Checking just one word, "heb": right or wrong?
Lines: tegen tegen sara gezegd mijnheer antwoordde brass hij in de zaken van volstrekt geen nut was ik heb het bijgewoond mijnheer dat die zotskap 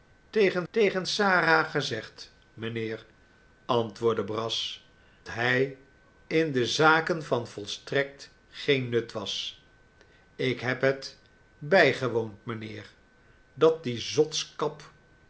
right